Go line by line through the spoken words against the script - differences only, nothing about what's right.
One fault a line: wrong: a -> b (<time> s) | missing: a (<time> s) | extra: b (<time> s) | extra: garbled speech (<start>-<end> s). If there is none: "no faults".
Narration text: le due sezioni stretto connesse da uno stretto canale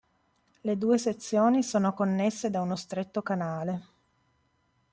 wrong: stretto -> sono (1.6 s)